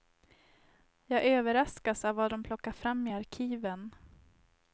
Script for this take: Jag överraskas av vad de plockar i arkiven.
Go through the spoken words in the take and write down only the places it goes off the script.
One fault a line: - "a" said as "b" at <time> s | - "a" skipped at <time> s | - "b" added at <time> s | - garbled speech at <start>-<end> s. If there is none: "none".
- "fram" added at 2.7 s